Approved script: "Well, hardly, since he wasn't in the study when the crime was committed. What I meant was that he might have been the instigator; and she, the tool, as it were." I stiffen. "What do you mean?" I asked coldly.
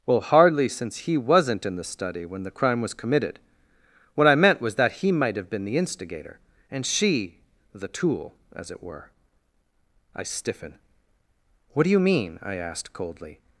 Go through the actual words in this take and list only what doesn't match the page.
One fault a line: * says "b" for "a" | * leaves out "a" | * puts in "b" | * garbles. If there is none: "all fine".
all fine